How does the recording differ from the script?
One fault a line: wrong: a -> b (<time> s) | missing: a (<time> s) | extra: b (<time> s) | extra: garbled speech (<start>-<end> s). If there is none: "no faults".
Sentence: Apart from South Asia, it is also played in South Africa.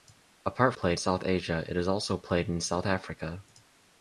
wrong: from -> played (0.7 s)